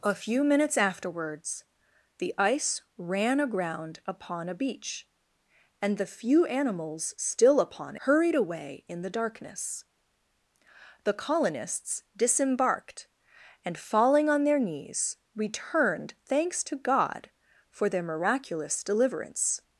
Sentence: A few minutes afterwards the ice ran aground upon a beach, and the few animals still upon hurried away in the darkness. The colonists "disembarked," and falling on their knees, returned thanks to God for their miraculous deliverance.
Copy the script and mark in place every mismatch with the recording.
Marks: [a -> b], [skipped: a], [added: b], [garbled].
A few minutes afterwards the ice ran aground upon a beach, and the few animals still upon hurried away in the darkness. The colonists "disembarked," and falling on their knees, returned thanks to God for their miraculous deliverance.